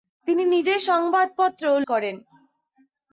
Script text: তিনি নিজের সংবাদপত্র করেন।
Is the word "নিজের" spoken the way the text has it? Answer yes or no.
yes